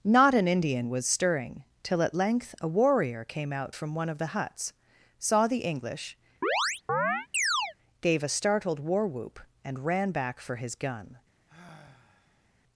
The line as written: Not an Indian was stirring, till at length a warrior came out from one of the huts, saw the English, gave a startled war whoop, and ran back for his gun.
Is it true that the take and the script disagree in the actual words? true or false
false